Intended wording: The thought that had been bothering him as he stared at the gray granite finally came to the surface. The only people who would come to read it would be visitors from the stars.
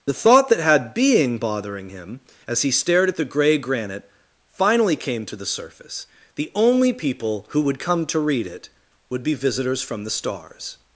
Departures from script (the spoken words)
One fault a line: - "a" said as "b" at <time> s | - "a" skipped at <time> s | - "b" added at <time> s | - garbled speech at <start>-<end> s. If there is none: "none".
- "been" said as "being" at 0.9 s